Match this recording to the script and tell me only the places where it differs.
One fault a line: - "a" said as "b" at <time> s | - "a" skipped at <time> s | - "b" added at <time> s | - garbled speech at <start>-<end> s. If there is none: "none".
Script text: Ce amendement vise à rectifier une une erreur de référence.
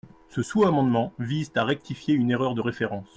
- "sous" added at 0.4 s
- "une" skipped at 2.3 s